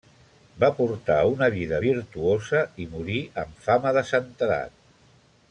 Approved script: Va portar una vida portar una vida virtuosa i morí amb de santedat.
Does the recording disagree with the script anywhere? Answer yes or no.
yes